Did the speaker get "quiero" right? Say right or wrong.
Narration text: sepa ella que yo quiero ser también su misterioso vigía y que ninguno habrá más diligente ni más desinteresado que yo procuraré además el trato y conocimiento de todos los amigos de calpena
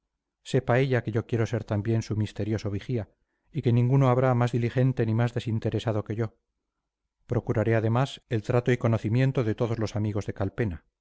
right